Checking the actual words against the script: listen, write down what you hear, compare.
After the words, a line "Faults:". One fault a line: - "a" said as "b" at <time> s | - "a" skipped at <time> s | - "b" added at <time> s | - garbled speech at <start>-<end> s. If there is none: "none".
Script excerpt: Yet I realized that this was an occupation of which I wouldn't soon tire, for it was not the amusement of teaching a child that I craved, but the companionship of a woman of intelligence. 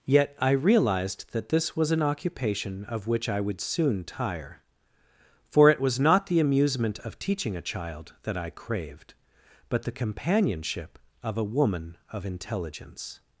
Yet I realized that this was an occupation of which I would soon tire, for it was not the amusement of teaching a child that I craved, but the companionship of a woman of intelligence.
Faults:
- "wouldn't" said as "would" at 3.4 s